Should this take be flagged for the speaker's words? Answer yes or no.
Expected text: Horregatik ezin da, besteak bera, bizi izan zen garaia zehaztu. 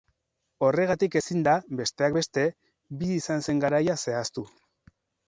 yes